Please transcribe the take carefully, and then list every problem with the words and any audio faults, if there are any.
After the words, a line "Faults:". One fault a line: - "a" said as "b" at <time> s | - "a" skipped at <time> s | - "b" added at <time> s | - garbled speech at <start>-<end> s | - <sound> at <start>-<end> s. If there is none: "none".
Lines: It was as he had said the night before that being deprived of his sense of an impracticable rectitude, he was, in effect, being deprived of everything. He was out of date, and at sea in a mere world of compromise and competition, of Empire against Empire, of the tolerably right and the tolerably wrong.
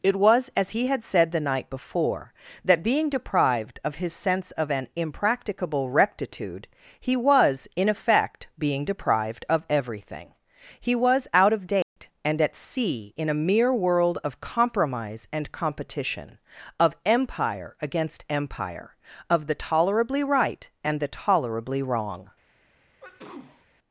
It was as he had said the night before that being deprived of his sense of an impracticable rectitude, he was, in effect, being deprived of everything. He was out of date, and at sea in a mere world of compromise and competition, of Empire against Empire, of the tolerably right and the tolerably wrong.
Faults:
- dropout at 11.8-12.0 s
- sneeze at 23.0-23.7 s